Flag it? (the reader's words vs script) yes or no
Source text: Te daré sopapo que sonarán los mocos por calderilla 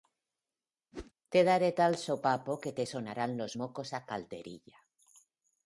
yes